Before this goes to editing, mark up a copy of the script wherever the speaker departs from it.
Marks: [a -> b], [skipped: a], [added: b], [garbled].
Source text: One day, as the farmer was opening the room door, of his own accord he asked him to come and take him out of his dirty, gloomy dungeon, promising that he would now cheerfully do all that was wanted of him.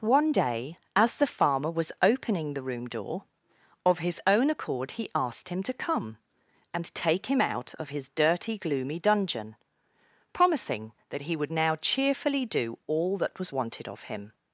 One day, as the farmer was opening the room door, of his own accord he asked him to come and take him out of his dirty, gloomy dungeon, promising that he would now cheerfully do all that was wanted of him.